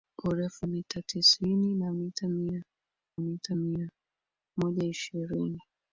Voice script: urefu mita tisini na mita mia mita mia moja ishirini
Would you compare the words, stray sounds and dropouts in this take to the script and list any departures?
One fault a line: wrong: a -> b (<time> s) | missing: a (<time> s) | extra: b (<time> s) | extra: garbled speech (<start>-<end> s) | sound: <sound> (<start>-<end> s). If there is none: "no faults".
no faults